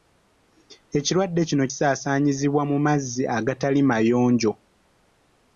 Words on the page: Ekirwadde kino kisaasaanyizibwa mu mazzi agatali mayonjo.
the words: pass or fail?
pass